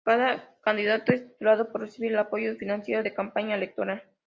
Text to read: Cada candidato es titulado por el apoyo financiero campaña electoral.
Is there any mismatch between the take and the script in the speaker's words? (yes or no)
yes